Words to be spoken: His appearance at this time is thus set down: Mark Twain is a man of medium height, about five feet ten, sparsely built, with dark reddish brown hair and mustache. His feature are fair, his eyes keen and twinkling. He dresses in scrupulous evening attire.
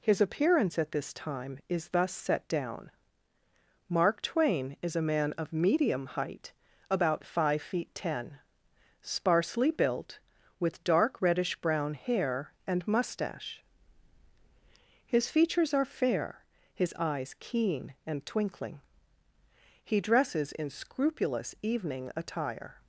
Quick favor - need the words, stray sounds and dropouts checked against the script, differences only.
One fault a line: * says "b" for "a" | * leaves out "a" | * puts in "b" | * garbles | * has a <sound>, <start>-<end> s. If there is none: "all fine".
* says "features" for "feature"